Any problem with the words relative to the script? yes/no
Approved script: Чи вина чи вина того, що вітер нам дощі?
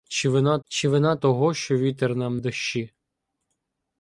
no